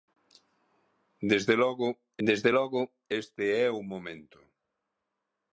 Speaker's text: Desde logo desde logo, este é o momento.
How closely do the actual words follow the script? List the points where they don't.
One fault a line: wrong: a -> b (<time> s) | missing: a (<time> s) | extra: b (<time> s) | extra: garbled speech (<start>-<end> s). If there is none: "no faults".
no faults